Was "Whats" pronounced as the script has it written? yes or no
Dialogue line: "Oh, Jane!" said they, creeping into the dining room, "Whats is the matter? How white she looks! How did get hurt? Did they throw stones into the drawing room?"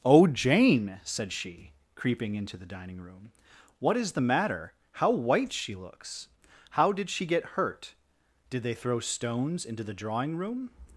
no